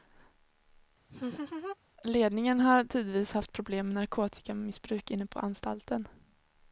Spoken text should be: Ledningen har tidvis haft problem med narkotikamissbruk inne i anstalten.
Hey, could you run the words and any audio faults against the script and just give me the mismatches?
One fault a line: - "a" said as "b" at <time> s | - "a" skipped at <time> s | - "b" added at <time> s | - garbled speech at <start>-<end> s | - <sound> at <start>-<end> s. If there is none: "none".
- laugh at 1.1-1.8 s
- "i" said as "på" at 5.3 s